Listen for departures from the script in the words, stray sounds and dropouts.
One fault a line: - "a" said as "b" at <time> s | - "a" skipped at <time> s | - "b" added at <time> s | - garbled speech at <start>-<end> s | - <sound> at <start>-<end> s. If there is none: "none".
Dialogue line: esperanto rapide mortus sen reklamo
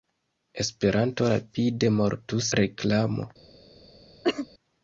- "sen" skipped at 2.5 s
- cough at 4.2-4.5 s